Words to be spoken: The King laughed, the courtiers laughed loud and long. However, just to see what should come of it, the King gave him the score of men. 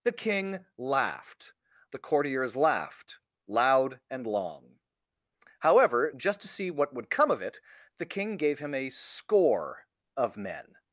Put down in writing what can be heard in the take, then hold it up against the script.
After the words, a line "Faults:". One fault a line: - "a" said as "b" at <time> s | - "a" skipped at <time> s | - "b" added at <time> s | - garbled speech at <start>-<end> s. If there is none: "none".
The King laughed, the courtiers laughed loud and long. However, just to see what would come of it, the King gave him a score of men.
Faults:
- "should" said as "would" at 6.9 s
- "the" said as "a" at 8.7 s